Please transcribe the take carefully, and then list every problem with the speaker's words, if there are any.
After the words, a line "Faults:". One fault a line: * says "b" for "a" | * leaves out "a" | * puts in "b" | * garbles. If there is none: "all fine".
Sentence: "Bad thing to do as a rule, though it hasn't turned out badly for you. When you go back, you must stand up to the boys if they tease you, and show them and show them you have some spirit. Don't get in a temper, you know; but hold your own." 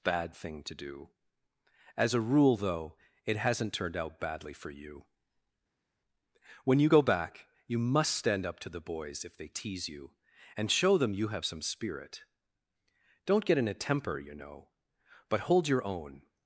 "Bad thing to do as a rule, though it hasn't turned out badly for you. When you go back, you must stand up to the boys if they tease you, and show them you have some spirit. Don't get in a temper, you know; but hold your own."
Faults:
* leaves out "and show them"